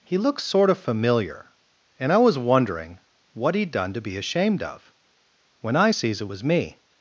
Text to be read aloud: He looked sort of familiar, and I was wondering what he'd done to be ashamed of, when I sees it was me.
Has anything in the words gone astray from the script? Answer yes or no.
no